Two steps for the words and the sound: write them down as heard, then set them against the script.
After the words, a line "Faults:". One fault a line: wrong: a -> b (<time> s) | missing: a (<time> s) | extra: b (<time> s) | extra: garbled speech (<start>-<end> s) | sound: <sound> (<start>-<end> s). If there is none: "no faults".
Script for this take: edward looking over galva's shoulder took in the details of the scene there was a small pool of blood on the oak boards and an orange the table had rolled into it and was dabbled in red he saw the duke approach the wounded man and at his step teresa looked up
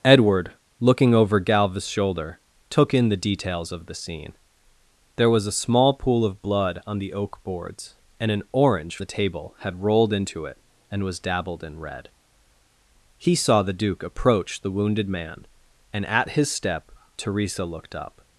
edward looking over galva's shoulder took in the details of the scene there was a small pool of blood on the oak boards and an orange the table had rolled into it and was dabbled in red he saw the duke approach the wounded man and at his step teresa looked up
Faults:
no faults